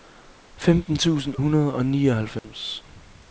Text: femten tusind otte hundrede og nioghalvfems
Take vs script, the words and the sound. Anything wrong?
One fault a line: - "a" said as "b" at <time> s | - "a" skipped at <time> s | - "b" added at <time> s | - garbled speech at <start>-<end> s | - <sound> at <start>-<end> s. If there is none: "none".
- "otte" skipped at 1.4 s
- dropout at 2.4-2.4 s